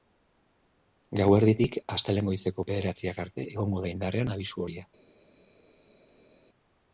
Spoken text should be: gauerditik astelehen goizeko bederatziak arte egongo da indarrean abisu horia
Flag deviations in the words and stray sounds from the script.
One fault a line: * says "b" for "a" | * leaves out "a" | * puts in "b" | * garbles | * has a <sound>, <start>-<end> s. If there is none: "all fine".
all fine